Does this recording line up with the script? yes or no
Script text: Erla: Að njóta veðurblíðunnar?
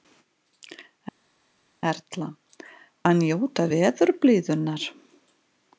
yes